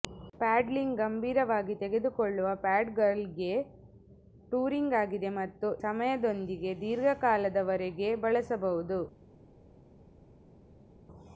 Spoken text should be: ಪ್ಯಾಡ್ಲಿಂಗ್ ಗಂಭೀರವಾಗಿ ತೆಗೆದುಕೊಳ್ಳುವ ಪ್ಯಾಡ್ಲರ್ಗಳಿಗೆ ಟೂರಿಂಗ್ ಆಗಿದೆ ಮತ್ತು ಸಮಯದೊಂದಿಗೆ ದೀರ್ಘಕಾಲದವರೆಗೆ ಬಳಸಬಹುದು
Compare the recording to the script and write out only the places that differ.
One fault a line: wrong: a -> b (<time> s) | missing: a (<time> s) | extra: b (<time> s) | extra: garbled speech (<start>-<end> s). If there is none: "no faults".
no faults